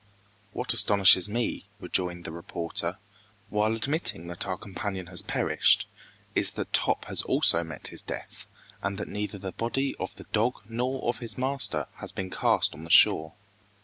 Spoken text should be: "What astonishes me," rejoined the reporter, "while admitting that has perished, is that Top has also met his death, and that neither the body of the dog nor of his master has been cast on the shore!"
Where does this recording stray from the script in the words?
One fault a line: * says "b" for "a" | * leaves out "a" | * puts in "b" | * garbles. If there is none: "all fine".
* puts in "our companion"